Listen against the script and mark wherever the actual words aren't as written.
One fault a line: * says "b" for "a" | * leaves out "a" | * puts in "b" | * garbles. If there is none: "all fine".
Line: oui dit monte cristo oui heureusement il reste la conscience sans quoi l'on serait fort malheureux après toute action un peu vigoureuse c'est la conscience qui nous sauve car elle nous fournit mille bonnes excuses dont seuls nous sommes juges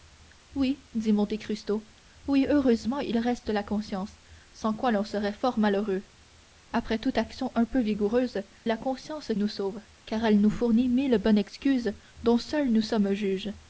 * leaves out "c'est"
* leaves out "qui"